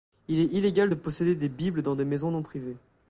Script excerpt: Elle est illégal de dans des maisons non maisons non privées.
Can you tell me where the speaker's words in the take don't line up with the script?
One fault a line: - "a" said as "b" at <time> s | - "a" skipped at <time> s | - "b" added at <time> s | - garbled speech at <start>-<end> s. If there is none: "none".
- "Elle" said as "Il" at 0.3 s
- "dans" said as "posséder" at 0.9 s
- "maisons non" said as "bibles dans des" at 1.5 s